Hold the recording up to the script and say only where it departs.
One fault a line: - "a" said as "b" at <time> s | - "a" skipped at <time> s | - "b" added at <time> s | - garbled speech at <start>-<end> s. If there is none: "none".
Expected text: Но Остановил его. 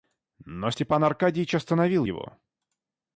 - "Степан Аркадьич" added at 0.7 s